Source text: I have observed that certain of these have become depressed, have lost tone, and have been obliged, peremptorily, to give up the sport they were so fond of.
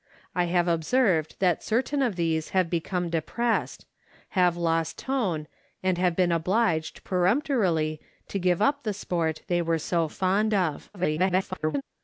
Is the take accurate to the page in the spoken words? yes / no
no